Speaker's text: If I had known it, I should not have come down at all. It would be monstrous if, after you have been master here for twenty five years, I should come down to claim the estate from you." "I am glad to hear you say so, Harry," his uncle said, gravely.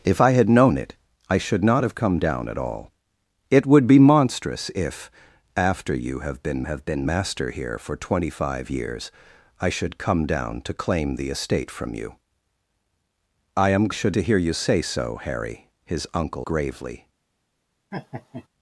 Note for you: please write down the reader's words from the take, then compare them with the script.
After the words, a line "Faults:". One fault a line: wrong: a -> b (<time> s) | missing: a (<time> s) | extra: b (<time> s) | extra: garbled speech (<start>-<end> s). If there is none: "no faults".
If I had known it, I should not have come down at all. It would be monstrous if, after you have been have been master here for twenty five years, I should come down to claim the estate from you." "I am should to hear you say so, Harry," his uncle gravely.
Faults:
extra: have been (6.6 s)
wrong: glad -> should (13.9 s)
missing: said (16.5 s)